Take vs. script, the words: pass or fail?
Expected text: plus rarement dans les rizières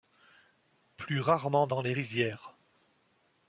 pass